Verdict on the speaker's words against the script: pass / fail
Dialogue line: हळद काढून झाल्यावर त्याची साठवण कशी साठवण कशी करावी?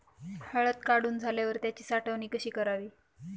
fail